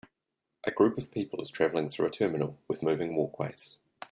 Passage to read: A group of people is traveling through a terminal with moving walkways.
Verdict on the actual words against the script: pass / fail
pass